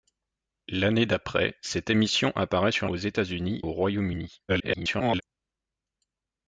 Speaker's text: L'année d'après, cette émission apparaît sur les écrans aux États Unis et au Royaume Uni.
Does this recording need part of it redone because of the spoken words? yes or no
yes